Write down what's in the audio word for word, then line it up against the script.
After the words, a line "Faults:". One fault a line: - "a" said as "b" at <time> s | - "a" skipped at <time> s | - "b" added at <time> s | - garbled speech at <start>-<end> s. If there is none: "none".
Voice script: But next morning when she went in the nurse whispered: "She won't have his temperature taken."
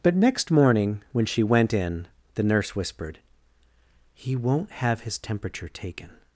But next morning when she went in the nurse whispered: "He won't have his temperature taken."
Faults:
- "She" said as "He" at 4.1 s